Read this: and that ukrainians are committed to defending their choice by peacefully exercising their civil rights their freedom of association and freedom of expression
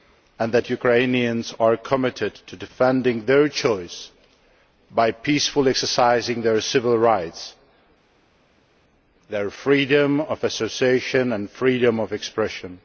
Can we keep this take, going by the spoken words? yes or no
yes